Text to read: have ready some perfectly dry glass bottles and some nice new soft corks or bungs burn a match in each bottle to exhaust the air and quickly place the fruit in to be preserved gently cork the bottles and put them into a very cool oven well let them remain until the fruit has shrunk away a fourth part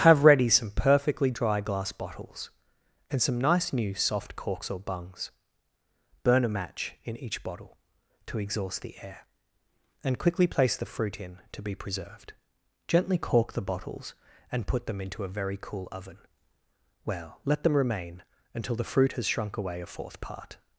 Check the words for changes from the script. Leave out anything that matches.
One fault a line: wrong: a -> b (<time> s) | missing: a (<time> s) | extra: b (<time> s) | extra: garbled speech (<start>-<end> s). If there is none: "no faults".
no faults